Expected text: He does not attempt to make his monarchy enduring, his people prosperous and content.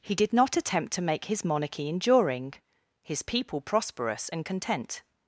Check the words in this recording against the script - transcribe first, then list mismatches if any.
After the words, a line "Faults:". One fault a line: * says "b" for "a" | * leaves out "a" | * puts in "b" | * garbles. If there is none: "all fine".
He did not attempt to make his monarchy enduring, his people prosperous and content.
Faults:
* says "did" for "does"